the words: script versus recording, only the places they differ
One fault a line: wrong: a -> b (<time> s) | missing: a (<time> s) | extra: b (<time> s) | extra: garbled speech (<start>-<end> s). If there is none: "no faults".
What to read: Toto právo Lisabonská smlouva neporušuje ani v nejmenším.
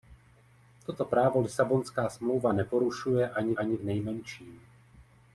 extra: ani (3.5 s)